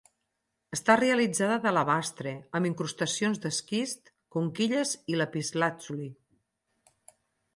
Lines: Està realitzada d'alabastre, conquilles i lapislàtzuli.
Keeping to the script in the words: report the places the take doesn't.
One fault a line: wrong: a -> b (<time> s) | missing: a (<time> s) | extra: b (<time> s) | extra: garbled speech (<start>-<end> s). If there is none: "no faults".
extra: amb incrustacions d'esquist (2.6 s)